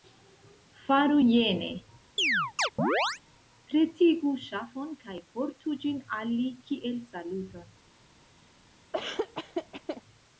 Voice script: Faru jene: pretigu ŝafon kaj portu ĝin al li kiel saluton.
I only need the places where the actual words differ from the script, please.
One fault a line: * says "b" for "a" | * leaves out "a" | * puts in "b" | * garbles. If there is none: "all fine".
all fine